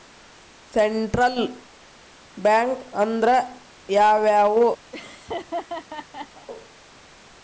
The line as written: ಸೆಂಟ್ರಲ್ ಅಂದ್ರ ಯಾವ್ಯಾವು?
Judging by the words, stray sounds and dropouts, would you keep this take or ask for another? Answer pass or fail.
fail